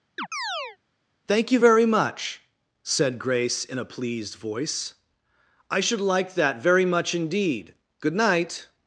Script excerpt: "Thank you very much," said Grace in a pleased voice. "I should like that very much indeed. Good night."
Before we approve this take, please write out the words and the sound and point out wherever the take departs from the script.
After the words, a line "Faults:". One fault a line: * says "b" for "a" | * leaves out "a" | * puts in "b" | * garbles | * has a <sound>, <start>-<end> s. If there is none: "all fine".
"Thank you very much," said Grace in a pleased voice. "I should like that very much indeed. Good night."
Faults:
* has a chirp, 0.2-0.8 s